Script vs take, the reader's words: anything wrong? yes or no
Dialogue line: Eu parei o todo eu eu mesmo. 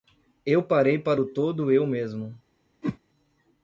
yes